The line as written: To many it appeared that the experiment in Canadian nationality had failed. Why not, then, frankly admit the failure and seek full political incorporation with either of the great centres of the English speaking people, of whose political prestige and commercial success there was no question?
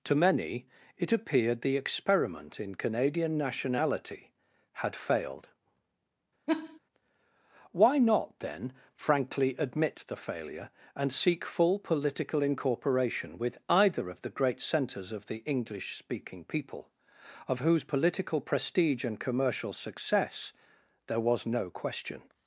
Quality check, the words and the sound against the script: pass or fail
fail